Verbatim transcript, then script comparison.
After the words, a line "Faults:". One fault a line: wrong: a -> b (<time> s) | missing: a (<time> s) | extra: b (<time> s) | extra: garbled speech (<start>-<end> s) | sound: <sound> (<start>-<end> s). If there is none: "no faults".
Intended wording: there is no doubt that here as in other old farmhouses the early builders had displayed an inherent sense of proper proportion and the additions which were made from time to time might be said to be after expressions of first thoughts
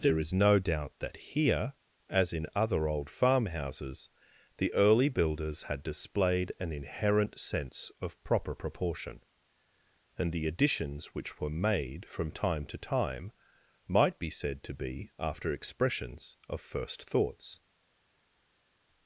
there is no doubt that here as in other old farmhouses the early builders had displayed an inherent sense of proper proportion and the additions which were made from time to time might be said to be after expressions of first thoughts
Faults:
no faults